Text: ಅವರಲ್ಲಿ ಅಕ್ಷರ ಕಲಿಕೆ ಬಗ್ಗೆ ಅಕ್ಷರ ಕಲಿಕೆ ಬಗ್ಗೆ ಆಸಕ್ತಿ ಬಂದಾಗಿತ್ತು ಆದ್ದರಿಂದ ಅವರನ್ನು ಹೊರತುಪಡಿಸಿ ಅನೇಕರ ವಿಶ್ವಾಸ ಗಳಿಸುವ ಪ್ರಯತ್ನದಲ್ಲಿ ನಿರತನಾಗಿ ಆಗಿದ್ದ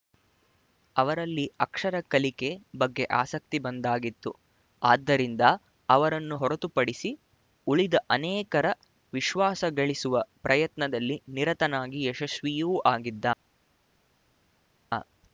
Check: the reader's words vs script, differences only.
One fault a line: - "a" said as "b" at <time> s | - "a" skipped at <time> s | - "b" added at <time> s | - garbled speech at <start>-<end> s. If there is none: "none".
- "ಅಕ್ಷರ ಕಲಿಕೆ ಬಗ್ಗೆ" skipped at 3.0 s
- "ಉಳಿದ" added at 7.7 s
- "ಯಶಸ್ವಿಯೂ" added at 12.1 s